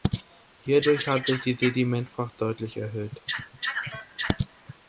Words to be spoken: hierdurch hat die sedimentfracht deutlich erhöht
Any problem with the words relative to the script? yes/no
yes